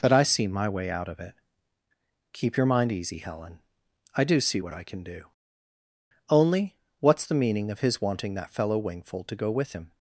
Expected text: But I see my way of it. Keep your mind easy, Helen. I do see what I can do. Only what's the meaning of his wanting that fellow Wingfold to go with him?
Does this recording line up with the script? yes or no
no